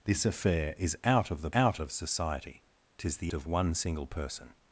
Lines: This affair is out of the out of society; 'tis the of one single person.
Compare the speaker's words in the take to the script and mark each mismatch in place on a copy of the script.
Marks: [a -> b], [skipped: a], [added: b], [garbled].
This affair is out of the out of society; 'tis the of one single person.